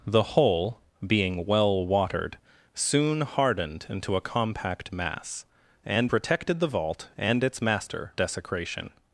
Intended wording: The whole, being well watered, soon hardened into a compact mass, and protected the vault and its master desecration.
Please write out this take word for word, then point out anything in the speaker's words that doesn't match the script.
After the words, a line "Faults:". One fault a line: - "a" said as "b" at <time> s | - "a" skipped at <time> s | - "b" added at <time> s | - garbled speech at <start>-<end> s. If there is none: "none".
The whole, being well watered, soon hardened into a compact mass, and protected the vault and its master desecration.
Faults:
none